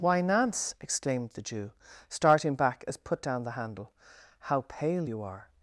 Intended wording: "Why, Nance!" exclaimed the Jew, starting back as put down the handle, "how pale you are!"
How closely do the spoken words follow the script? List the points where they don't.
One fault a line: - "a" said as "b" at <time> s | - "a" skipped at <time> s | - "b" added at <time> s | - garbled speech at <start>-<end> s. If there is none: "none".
none